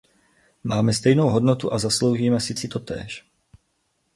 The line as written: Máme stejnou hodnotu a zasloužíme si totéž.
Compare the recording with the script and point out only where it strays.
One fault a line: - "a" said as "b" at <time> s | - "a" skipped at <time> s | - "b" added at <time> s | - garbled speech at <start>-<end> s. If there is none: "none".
- "si" added at 2.5 s